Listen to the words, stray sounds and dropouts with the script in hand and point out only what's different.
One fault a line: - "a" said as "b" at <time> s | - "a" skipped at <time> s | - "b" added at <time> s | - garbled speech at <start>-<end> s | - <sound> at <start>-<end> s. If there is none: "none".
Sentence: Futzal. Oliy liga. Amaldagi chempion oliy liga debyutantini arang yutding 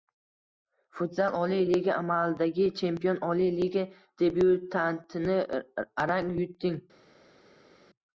none